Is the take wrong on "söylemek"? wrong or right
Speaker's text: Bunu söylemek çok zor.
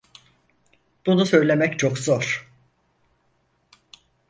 right